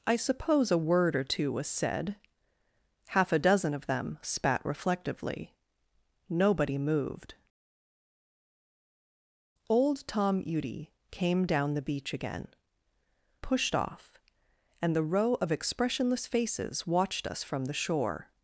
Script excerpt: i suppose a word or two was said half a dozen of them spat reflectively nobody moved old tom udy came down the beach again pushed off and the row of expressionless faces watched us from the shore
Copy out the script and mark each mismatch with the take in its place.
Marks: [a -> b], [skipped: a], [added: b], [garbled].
i suppose a word or two was said half a dozen of them spat reflectively nobody moved old tom udy came down the beach again pushed off and the row of expressionless faces watched us from the shore